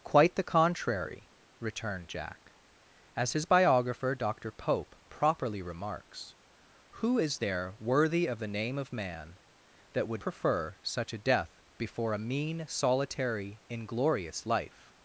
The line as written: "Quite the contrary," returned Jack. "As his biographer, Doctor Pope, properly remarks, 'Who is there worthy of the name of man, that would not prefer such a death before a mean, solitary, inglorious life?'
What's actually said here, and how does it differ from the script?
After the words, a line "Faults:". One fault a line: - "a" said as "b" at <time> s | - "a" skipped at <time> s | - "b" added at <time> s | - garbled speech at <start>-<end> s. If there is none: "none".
"Quite the contrary," returned Jack. "As his biographer, Doctor Pope, properly remarks, 'Who is there worthy of the name of man, that would prefer such a death before a mean, solitary, inglorious life?'
Faults:
- "not" skipped at 10.2 s